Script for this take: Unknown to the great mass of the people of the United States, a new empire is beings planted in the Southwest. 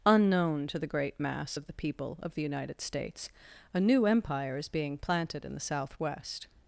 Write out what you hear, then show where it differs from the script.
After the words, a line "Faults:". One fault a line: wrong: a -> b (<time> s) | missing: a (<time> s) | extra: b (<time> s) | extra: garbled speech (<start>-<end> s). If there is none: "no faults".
Unknown to the great mass of the people of the United States, a new empire is being planted in the Southwest.
Faults:
wrong: beings -> being (4.7 s)